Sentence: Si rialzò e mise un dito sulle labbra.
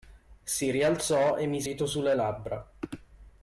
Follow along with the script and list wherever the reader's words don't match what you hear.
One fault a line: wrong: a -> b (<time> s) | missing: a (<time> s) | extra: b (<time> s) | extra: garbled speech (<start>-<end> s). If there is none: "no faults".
missing: un (1.7 s)